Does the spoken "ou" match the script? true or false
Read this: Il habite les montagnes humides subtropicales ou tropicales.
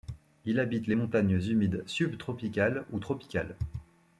true